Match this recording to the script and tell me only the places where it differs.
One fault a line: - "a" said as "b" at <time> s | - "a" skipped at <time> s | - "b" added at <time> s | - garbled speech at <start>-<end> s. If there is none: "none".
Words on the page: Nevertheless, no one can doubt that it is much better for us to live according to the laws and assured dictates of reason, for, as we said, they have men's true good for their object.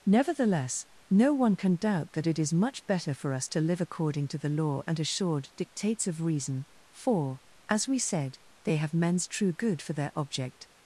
- "laws" said as "law" at 4.5 s